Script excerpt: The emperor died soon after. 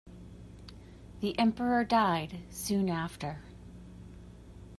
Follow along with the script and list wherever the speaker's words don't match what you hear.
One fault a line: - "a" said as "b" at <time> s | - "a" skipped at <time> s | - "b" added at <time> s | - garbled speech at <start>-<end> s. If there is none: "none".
none